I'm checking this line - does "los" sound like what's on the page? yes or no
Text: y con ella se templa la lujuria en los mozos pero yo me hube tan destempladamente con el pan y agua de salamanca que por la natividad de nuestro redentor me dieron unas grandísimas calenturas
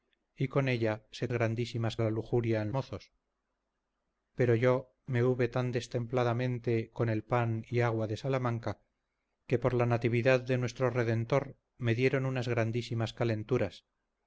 no